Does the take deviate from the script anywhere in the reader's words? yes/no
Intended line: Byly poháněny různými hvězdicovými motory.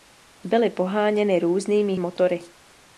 yes